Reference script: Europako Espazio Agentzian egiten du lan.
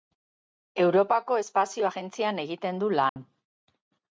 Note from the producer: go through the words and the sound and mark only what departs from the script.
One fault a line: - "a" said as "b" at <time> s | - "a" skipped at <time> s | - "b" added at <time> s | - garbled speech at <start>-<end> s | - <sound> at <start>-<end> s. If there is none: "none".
- dropout at 3.1-3.2 s